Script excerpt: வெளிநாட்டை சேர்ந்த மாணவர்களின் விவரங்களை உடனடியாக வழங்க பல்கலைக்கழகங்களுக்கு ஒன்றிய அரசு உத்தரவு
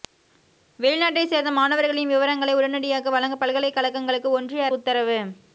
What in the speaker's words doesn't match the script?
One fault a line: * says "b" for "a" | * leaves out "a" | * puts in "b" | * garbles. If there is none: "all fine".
* leaves out "அரசு"